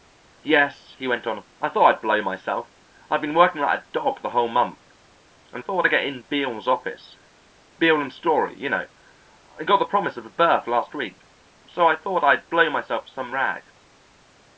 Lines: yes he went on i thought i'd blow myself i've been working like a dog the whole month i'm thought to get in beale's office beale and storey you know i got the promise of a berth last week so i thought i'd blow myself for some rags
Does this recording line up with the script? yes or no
yes